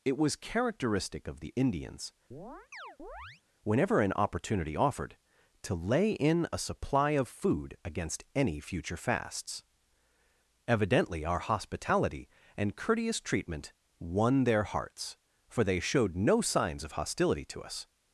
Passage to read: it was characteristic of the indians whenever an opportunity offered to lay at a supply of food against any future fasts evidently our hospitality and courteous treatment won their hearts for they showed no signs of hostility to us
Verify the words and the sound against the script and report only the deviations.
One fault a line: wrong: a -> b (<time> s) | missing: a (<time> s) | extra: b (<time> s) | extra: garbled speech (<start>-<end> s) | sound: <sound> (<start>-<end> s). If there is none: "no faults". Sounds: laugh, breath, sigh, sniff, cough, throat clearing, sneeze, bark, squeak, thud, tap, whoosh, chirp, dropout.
sound: chirp (2.3-3.4 s)
wrong: at -> in (6.1 s)